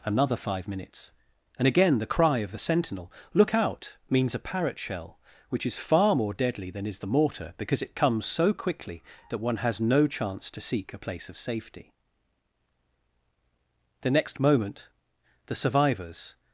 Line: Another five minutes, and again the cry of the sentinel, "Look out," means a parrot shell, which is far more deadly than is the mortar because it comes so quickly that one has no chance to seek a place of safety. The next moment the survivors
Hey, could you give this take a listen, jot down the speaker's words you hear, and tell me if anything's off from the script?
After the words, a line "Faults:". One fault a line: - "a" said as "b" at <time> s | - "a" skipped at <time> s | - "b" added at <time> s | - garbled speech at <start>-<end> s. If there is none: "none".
Another five minutes, and again the cry of the sentinel, "Look out," means a parrot shell, which is far more deadly than is the mortar because it comes so quickly that one has no chance to seek a place of safety. The next moment the survivors
Faults:
none